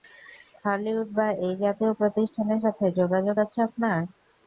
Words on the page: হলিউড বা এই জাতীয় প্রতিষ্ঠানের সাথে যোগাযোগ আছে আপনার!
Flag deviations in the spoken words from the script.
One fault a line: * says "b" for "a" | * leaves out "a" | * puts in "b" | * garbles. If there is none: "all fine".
all fine